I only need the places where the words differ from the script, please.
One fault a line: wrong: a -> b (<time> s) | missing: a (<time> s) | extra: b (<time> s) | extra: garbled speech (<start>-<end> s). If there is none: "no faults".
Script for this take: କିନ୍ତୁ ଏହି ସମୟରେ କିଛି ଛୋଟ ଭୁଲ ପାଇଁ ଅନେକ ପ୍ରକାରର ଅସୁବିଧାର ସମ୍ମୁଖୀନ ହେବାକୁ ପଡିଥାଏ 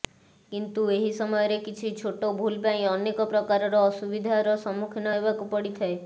no faults